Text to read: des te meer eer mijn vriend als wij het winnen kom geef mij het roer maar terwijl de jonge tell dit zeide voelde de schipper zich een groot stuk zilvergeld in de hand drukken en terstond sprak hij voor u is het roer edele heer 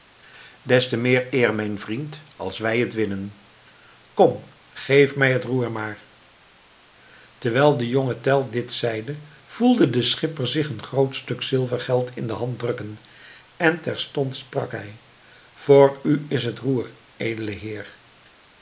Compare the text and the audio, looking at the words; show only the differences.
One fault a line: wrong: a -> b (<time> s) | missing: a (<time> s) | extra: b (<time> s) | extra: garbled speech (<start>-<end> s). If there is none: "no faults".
no faults